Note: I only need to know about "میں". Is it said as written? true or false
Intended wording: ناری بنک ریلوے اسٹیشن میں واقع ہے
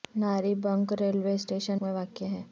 true